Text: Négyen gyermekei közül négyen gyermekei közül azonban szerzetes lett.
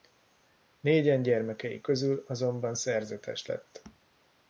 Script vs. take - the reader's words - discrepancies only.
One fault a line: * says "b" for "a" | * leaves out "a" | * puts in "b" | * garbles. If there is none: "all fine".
* leaves out "négyen gyermekei közül"